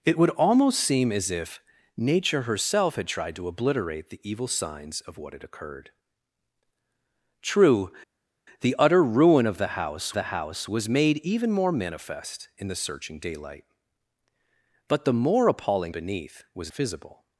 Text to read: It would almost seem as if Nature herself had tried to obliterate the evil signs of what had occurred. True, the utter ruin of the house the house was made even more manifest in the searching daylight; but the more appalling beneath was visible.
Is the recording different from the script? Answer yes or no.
no